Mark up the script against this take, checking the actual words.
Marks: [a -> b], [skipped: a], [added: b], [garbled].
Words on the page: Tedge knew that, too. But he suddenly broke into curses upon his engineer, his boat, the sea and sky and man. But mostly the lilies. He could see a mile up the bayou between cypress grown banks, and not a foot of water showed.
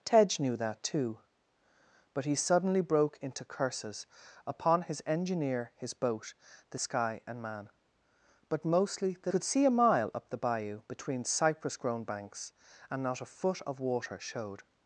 Tedge knew that, too. But he suddenly broke into curses upon his engineer, his boat, the [skipped: sea and] sky and man. But mostly the [skipped: lilies. He] could see a mile up the bayou between cypress grown banks, and not a foot of water showed.